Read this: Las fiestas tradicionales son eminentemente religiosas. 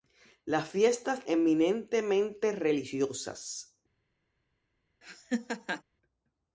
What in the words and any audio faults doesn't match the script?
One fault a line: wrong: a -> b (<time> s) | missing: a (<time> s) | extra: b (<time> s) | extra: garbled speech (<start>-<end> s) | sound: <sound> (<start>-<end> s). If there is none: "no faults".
missing: tradicionales son (1.2 s)
sound: laugh (5.0-5.8 s)